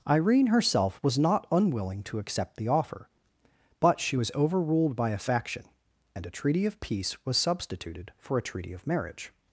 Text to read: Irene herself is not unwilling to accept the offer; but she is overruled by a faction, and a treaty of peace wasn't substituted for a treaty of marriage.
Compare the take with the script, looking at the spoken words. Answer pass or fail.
fail